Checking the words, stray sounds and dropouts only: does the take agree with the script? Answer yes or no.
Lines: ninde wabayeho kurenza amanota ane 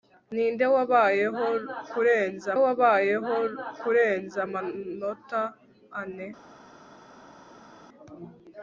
no